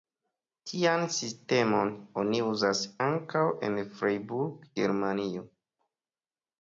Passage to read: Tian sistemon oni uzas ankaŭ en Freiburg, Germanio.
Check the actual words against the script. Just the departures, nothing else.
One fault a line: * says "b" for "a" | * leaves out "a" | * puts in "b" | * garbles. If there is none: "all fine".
all fine